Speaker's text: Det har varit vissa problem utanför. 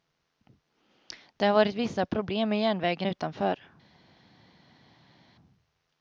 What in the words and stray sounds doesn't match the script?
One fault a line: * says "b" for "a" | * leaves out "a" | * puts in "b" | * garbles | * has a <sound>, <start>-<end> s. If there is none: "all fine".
* puts in "med järnvägen"